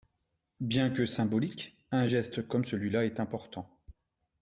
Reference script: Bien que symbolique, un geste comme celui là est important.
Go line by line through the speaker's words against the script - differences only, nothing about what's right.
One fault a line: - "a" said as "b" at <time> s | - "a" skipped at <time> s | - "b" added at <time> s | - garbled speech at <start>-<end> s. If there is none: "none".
none